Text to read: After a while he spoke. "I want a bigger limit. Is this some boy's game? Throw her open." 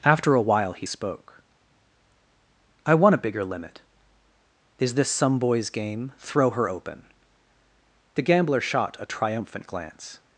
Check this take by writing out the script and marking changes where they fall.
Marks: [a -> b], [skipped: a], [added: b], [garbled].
After a while he spoke. "I want a bigger limit. Is this some boy's game? Throw her open." [added: The gambler shot a triumphant glance]